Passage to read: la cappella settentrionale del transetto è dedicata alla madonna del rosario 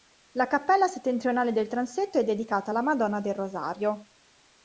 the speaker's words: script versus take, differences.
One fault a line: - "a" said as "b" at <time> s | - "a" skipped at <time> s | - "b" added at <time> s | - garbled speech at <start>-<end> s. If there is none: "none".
none